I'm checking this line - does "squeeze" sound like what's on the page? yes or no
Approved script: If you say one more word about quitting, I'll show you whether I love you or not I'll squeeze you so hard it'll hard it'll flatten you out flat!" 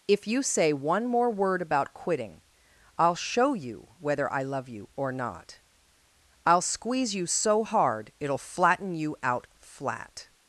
yes